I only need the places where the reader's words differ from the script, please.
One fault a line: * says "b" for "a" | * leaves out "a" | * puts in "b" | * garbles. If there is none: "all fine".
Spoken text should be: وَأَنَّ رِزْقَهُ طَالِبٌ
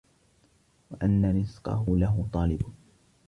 * puts in "لَهُ"